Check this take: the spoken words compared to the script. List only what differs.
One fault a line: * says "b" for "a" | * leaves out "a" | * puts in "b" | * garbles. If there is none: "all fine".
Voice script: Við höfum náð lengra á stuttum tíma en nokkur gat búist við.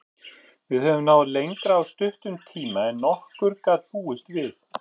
all fine